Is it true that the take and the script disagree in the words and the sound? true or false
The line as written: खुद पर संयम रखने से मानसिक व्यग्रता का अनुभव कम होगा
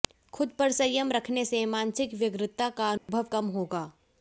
true